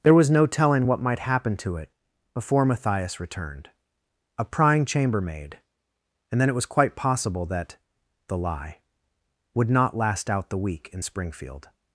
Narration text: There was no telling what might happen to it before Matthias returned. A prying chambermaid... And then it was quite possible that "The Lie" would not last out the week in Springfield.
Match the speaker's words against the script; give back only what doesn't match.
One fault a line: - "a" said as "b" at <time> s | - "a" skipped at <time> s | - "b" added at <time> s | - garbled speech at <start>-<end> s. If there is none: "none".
none